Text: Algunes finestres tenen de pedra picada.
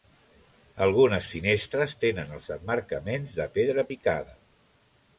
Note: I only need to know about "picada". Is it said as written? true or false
true